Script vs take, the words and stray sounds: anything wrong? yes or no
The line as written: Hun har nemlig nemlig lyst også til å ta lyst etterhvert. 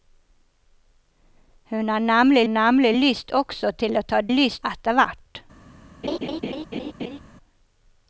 yes